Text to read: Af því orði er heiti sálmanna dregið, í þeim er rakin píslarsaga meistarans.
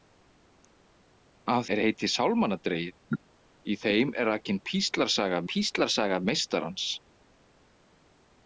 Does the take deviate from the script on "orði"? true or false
true